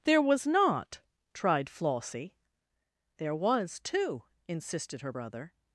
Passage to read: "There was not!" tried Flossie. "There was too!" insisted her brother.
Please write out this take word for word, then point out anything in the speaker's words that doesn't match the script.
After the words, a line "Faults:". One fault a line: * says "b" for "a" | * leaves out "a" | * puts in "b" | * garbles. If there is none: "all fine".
"There was not!" tried Flossie. "There was too!" insisted her brother.
Faults:
all fine